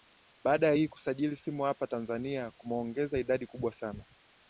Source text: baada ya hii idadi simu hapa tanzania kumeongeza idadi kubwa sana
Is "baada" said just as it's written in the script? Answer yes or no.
yes